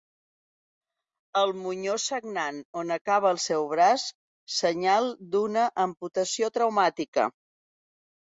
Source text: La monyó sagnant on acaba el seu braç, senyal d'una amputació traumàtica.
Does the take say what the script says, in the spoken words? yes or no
no